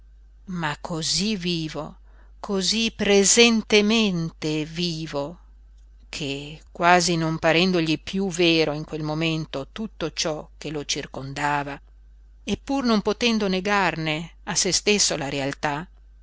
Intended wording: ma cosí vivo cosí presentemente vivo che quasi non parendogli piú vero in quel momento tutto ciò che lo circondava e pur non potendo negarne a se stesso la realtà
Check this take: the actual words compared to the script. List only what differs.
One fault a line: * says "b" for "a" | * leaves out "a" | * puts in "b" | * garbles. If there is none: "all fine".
all fine